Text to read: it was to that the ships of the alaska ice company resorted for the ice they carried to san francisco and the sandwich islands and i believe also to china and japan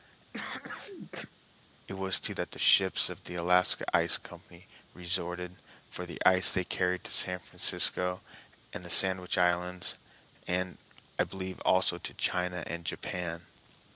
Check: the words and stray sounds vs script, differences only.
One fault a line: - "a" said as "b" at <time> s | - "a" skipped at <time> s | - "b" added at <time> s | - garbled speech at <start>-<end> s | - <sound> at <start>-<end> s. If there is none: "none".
- sneeze at 0.3-1.3 s